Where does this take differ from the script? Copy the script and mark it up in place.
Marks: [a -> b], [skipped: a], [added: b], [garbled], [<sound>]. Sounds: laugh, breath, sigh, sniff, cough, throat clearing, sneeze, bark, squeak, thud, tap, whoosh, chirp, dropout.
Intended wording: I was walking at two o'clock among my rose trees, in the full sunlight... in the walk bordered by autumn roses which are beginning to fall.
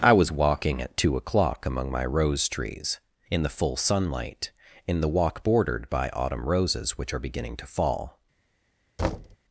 I was walking at two o'clock among my rose trees, in the full sunlight... in the walk bordered by autumn roses which are beginning to fall. [thud]